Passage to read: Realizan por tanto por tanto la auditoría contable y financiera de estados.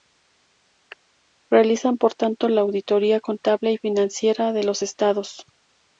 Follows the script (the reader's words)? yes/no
no